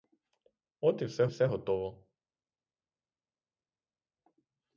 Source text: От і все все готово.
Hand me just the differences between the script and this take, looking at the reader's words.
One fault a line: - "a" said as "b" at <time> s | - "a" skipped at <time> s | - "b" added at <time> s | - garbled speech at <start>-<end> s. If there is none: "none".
none